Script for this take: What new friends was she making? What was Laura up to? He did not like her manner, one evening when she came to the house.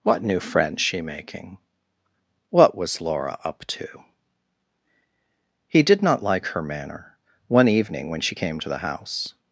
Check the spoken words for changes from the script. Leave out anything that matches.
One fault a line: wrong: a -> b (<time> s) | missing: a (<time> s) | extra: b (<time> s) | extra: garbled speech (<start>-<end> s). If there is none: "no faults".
missing: was (0.8 s)